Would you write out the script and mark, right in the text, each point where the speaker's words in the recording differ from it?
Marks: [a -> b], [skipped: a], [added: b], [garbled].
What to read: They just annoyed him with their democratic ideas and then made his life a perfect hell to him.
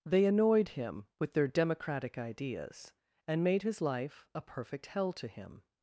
They [skipped: just] annoyed him with their democratic ideas and [skipped: then] made his life a perfect hell to him.